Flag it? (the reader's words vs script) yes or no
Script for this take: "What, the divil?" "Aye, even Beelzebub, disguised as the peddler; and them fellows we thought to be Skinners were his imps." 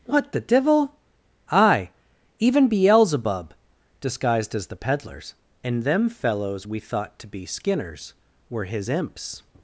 yes